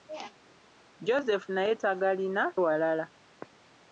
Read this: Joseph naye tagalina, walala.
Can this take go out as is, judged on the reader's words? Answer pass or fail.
pass